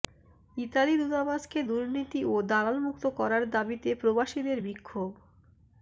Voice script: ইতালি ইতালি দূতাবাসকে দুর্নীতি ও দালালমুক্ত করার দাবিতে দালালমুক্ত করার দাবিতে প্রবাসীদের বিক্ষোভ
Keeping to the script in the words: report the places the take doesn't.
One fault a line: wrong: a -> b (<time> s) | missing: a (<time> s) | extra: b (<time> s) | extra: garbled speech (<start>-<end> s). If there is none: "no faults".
missing: ইতালি (0.9 s)
missing: দালালমুক্ত করার দাবিতে (3.9 s)